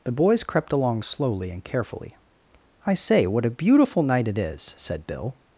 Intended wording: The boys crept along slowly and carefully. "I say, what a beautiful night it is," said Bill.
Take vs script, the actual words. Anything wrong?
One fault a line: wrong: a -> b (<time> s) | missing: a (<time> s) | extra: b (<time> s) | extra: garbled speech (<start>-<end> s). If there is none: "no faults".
no faults